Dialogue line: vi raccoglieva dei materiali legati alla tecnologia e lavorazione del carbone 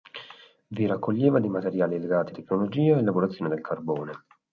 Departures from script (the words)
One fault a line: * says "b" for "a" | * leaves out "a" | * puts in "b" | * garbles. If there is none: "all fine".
* leaves out "alla"